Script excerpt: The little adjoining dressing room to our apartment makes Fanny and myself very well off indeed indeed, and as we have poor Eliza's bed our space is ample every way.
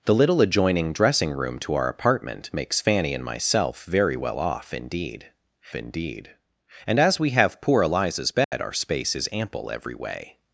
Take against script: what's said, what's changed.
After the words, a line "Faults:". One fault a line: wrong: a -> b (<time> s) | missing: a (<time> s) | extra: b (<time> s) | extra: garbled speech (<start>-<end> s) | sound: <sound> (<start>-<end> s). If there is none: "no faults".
The little adjoining dressing room to our apartment makes Fanny and myself very well off indeed indeed, and as we have poor Eliza's bed our space is ample every way.
Faults:
sound: dropout (8.4-8.5 s)